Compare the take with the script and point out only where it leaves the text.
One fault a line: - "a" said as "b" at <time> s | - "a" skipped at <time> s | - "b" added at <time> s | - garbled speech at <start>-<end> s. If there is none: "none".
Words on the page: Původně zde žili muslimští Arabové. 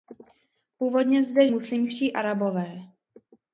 - "žili" skipped at 1.5 s